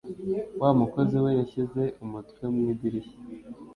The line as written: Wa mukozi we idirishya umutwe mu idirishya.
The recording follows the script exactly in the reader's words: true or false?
false